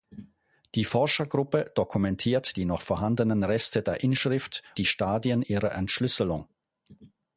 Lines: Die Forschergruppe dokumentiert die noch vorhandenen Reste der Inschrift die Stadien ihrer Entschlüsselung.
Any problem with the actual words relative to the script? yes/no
no